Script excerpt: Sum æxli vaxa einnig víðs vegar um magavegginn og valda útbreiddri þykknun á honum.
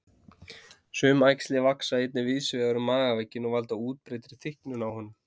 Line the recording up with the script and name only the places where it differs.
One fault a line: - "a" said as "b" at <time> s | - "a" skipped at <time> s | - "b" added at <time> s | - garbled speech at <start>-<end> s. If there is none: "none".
none